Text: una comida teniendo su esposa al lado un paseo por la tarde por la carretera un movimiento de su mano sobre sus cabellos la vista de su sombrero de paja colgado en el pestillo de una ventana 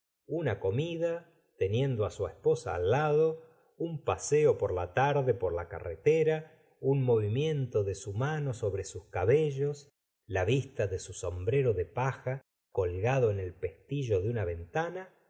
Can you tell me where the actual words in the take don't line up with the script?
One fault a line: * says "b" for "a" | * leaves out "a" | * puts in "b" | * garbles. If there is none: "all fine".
all fine